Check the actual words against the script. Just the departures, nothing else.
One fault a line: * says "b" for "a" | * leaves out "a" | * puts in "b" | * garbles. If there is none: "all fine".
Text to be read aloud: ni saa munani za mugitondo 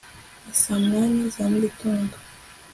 all fine